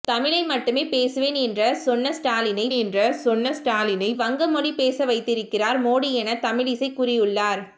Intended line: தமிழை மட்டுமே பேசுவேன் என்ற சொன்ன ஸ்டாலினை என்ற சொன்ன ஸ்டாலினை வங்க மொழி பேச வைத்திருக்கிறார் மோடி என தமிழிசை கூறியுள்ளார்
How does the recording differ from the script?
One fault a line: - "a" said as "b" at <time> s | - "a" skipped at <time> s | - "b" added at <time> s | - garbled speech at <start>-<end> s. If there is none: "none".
none